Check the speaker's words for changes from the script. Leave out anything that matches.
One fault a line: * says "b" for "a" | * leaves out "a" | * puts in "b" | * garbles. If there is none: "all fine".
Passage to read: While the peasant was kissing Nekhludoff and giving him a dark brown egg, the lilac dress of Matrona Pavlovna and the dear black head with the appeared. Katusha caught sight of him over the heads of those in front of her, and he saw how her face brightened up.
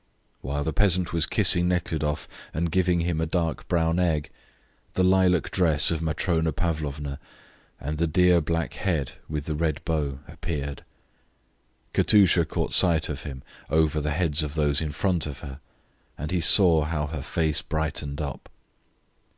* puts in "red bow"